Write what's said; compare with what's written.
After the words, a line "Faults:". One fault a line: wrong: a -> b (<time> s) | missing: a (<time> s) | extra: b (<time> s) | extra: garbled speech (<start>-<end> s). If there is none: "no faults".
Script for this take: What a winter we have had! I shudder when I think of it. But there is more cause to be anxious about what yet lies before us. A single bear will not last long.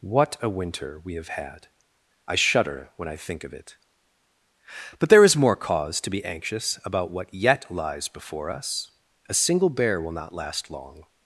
What a winter we have had! I shudder when I think of it. But there is more cause to be anxious about what yet lies before us. A single bear will not last long.
Faults:
no faults